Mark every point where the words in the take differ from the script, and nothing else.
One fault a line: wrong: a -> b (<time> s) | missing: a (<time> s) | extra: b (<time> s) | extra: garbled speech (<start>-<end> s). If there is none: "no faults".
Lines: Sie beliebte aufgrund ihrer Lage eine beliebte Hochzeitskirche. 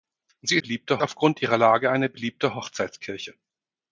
no faults